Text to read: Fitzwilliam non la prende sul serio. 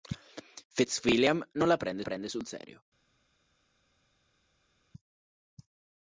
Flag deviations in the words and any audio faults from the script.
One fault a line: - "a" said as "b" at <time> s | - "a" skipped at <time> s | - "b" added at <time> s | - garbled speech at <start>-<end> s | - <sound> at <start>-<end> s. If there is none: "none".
- "prende" added at 2.0 s